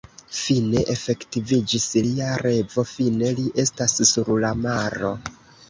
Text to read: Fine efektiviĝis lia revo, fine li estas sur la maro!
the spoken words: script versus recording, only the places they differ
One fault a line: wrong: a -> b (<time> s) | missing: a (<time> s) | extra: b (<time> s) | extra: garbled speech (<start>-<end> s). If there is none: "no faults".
no faults